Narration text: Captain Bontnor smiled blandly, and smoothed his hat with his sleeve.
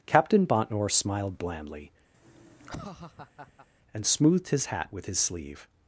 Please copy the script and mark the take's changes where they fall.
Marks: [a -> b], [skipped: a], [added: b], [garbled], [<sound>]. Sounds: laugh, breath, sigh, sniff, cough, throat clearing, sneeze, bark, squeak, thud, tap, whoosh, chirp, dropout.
Captain Bontnor smiled blandly, [laugh] and smoothed his hat with his sleeve.